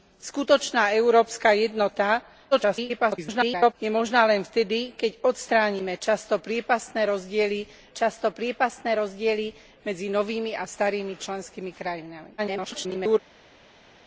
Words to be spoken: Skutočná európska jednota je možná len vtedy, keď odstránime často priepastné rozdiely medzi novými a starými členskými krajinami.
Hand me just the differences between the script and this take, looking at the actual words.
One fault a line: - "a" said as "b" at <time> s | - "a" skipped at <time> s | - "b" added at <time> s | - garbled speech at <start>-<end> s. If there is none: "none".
- garbled speech at 2.5-3.7 s
- "často priepastné rozdiely" added at 7.9 s
- garbled speech at 12.4-13.2 s